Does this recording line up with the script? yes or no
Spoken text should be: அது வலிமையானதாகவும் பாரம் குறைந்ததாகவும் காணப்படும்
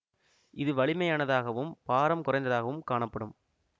no